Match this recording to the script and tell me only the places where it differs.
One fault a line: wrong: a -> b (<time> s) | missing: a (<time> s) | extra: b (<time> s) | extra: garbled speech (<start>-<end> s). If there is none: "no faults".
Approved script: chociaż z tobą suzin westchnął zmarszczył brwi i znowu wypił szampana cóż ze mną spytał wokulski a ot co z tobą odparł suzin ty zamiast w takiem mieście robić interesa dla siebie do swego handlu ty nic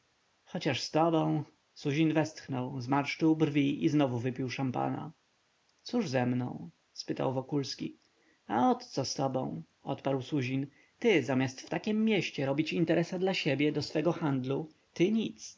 no faults